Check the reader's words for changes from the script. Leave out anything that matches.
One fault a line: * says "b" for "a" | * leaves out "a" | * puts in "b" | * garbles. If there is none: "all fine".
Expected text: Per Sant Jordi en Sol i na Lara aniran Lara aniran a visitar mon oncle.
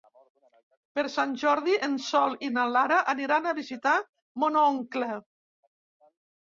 * leaves out "Lara aniran"